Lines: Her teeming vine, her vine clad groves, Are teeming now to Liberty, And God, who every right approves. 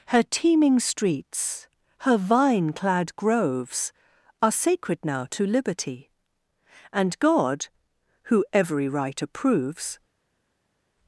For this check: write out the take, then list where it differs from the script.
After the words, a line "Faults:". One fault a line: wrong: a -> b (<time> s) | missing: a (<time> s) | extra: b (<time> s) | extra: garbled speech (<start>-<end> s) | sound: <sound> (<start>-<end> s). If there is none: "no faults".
Her teeming streets, her vine clad groves, Are sacred now to Liberty, And God, who every right approves.
Faults:
wrong: vine -> streets (0.8 s)
wrong: teeming -> sacred (4.5 s)